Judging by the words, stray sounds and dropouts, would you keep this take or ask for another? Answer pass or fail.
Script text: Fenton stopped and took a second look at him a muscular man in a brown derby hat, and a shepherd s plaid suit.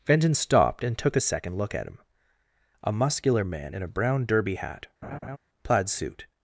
fail